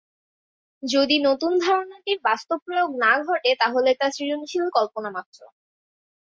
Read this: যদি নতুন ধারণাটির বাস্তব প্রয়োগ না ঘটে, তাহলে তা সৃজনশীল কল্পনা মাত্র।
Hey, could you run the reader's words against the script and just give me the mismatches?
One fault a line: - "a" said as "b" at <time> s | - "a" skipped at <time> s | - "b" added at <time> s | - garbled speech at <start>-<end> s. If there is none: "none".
none